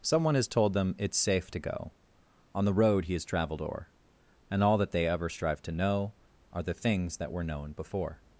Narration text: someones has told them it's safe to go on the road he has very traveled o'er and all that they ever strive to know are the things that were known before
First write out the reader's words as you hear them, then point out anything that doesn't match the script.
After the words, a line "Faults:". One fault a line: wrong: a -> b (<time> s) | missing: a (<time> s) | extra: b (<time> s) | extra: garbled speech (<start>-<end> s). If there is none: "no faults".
someone has told them it's safe to go on the road he has traveled o'er and all that they ever strive to know are the things that were known before
Faults:
wrong: someones -> someone (0.0 s)
missing: very (3.2 s)